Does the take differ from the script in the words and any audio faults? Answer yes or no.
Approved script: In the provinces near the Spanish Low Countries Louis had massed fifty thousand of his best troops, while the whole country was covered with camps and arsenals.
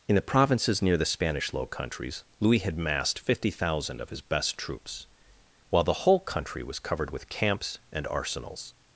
no